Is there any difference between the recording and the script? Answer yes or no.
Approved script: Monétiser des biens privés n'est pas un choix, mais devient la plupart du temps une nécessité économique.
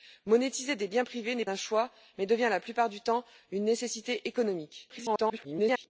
yes